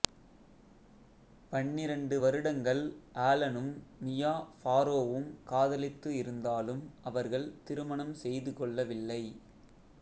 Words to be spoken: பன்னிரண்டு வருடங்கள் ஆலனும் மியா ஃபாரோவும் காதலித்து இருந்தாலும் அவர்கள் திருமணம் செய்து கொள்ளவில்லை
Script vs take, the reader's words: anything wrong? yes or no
no